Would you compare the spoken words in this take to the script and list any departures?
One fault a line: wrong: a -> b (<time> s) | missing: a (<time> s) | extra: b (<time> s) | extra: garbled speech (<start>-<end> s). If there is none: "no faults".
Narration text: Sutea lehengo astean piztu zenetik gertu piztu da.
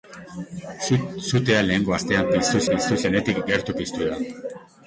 extra: piztu (2.7 s)